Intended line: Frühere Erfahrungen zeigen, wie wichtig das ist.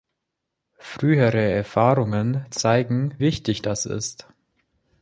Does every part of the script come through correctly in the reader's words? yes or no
no